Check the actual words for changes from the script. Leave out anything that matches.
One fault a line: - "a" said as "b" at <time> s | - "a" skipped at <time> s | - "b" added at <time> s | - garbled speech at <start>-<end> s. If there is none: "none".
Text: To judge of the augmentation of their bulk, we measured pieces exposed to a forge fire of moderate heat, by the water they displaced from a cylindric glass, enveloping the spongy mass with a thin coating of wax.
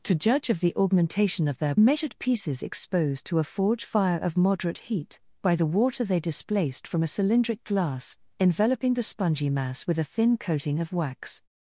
- "bulk we" skipped at 1.8 s